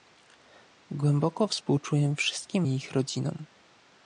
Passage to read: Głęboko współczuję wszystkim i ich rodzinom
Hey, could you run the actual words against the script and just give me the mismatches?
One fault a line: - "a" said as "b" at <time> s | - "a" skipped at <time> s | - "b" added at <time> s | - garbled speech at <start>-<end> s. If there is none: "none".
none